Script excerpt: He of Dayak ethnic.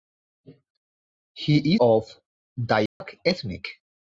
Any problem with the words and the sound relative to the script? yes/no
yes